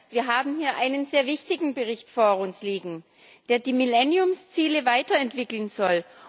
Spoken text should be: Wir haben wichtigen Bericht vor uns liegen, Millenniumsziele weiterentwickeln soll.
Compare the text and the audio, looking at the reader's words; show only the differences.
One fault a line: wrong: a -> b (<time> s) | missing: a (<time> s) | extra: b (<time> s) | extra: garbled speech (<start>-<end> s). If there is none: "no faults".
extra: hier einen sehr (0.6 s)
extra: der die (3.5 s)